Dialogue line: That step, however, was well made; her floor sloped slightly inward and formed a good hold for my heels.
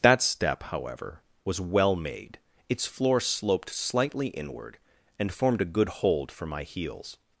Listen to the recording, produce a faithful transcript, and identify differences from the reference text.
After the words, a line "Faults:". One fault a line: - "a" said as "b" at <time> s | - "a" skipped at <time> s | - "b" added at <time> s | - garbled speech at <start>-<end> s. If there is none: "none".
That step, however, was well made; its floor sloped slightly inward and formed a good hold for my heels.
Faults:
- "her" said as "its" at 2.7 s